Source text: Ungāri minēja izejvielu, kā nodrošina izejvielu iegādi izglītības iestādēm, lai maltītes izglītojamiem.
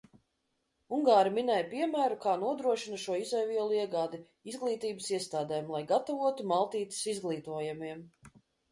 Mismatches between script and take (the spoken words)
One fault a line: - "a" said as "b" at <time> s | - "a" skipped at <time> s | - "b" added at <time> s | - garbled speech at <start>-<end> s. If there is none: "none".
- "izejvielu" said as "piemēru" at 1.7 s
- "šo" added at 3.0 s
- "gatavotu" added at 6.0 s